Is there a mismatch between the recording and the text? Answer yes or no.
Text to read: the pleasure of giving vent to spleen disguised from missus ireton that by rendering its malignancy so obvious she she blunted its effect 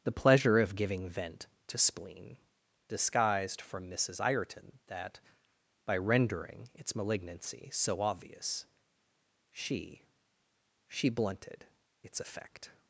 no